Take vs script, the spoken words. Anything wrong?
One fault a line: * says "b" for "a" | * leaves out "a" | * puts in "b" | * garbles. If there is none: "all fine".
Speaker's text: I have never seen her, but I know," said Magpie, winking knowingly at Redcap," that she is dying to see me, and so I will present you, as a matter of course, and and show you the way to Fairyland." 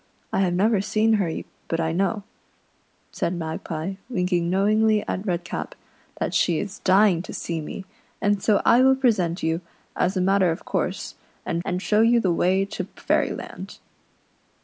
all fine